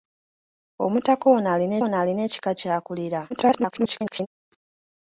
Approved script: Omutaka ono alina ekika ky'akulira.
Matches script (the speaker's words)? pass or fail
fail